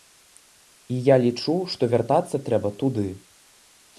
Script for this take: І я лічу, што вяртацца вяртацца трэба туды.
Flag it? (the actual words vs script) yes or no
yes